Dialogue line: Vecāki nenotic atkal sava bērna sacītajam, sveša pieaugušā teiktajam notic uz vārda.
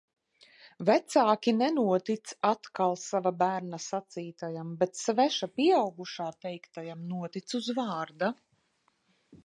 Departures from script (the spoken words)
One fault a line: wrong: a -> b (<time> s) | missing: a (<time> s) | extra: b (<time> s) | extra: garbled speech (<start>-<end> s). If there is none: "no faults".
extra: bet (4.8 s)